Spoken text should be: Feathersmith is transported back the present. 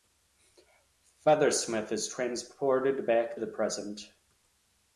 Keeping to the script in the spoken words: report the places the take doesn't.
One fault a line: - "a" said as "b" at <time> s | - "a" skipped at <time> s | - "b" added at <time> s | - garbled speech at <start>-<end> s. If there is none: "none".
none